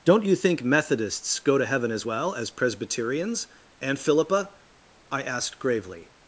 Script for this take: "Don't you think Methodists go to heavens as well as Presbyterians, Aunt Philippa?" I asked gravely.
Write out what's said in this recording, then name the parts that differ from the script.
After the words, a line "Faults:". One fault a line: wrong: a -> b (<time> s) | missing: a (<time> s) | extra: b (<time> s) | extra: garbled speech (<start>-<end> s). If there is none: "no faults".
"Don't you think Methodists go to heaven as well as Presbyterians, Aunt Philippa?" I asked gravely.
Faults:
wrong: heavens -> heaven (1.6 s)